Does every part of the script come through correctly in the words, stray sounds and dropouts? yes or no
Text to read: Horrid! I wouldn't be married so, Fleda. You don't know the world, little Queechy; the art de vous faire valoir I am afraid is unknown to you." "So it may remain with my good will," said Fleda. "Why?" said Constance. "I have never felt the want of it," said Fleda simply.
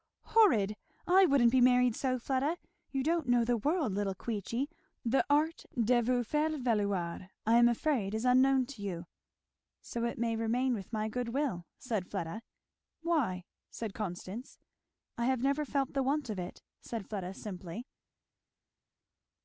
yes